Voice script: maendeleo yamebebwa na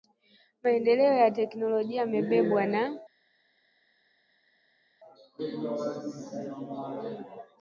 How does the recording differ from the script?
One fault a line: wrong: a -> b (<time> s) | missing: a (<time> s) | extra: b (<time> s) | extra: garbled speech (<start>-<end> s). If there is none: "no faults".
extra: ya teknolojia (1.1 s)